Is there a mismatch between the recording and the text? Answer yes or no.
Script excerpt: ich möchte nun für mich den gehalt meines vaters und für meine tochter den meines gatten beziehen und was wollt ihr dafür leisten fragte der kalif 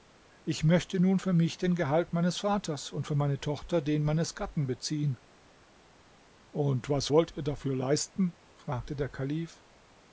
no